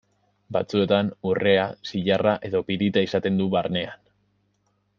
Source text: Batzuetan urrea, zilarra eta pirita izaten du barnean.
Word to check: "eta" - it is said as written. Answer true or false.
false